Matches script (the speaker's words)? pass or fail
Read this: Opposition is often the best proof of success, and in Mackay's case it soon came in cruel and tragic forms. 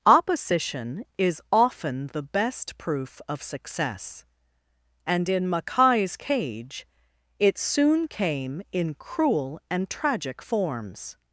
fail